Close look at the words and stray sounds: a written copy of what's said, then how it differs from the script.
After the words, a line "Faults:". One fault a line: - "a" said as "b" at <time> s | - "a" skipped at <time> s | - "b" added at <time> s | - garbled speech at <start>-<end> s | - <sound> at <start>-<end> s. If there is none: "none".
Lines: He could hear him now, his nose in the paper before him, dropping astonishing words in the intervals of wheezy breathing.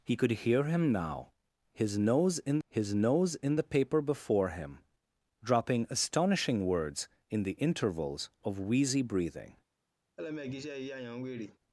He could hear him now, his nose in his nose in the paper before him, dropping astonishing words in the intervals of wheezy breathing.
Faults:
- "his nose in" added at 2.7 s
- laugh at 10.2-11.6 s